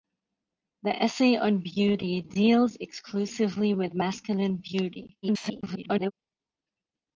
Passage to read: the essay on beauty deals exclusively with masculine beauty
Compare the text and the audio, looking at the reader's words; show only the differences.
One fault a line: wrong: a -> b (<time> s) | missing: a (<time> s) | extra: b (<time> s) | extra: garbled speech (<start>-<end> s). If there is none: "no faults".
extra: garbled speech (5.2-6.1 s)